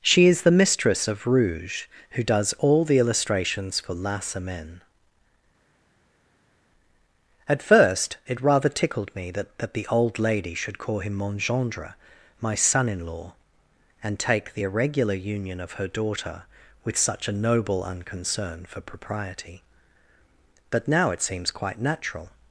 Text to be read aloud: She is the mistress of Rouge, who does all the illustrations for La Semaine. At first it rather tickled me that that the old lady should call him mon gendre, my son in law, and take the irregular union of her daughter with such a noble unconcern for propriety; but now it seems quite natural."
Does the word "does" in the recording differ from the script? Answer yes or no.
no